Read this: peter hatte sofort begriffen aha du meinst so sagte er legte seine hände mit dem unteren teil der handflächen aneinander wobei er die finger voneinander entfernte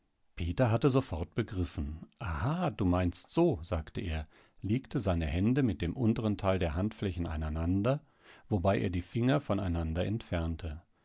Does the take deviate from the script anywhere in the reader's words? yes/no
no